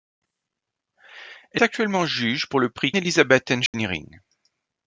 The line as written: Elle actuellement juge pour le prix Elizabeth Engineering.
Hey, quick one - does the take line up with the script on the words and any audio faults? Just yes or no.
no